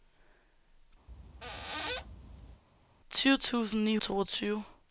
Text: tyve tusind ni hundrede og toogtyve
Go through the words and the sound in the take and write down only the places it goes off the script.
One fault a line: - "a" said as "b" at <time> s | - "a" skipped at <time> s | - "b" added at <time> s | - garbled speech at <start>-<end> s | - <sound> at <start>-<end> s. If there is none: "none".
- squeak at 1.1-2.6 s
- "hundrede og" skipped at 4.0 s